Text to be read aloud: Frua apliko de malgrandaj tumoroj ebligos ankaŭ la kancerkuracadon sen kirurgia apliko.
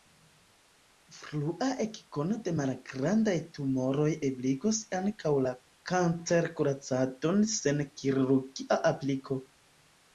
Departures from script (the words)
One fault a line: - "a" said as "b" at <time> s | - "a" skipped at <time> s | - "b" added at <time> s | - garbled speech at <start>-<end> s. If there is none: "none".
- "apliko" said as "ekkono" at 1.9 s